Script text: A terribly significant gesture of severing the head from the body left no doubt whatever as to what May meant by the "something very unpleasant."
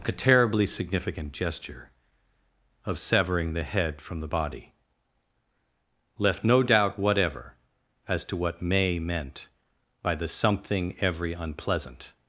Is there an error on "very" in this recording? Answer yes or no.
yes